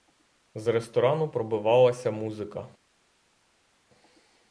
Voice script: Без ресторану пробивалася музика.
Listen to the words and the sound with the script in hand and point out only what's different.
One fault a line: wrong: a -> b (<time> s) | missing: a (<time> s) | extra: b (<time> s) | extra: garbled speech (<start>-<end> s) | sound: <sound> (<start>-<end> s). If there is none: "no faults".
wrong: Без -> З (0.6 s)